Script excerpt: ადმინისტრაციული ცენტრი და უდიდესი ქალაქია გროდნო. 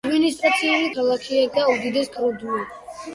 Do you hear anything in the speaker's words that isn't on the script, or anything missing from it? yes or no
yes